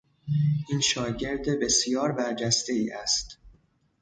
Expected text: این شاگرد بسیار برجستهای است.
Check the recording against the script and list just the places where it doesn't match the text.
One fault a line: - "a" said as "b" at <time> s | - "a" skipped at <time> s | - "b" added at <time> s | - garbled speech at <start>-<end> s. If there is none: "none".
none